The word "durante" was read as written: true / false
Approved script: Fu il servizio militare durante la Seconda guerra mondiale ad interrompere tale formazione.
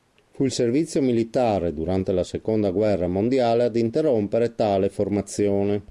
true